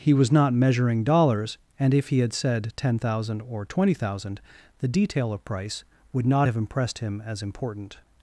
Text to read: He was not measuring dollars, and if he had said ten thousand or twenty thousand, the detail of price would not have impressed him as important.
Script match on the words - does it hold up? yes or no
yes